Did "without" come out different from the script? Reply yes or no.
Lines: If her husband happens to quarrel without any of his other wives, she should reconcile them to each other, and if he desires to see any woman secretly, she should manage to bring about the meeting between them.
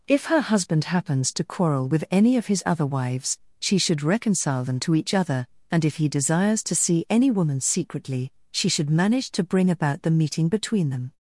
yes